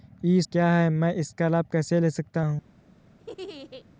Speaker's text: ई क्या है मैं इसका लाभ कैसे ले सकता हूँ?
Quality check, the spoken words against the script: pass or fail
pass